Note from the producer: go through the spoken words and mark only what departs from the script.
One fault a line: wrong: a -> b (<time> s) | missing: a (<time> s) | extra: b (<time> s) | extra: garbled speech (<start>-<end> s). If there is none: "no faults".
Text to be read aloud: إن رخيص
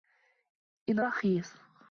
no faults